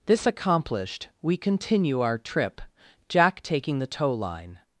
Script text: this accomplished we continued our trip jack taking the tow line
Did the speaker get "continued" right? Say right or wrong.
wrong